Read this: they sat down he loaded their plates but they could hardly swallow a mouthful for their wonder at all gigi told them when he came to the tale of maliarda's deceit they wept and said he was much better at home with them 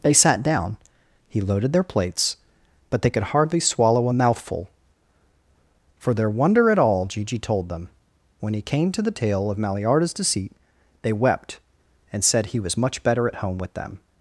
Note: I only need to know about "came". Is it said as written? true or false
true